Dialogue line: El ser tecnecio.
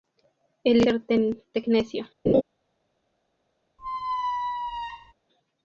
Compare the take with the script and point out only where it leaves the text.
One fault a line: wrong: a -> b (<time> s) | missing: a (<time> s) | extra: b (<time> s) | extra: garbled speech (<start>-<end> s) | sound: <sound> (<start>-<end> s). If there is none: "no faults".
sound: laugh (2.3-2.4 s)
sound: squeak (3.8-5.1 s)